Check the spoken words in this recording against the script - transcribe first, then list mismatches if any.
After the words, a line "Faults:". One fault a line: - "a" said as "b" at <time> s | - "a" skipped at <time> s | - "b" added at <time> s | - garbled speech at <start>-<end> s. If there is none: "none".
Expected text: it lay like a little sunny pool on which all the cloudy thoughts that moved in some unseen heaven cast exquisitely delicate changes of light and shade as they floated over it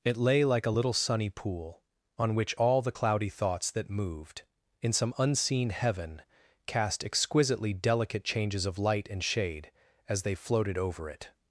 it lay like a little sunny pool on which all the cloudy thoughts that moved in some unseen heaven cast exquisitely delicate changes of light and shade as they floated over it
Faults:
none